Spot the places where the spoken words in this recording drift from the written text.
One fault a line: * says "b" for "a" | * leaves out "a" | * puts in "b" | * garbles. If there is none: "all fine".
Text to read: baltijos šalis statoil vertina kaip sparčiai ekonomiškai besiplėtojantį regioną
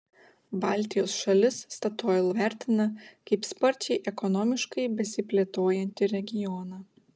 all fine